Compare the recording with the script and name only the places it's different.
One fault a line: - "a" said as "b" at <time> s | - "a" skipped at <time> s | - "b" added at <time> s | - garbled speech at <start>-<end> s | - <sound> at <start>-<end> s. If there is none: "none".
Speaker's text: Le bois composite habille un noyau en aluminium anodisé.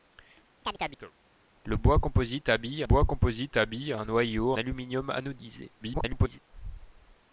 - chirp at 0.6-1.1 s
- "bois composite habille" added at 2.8 s
- "en" skipped at 4.5 s
- garbled speech at 5.8-6.4 s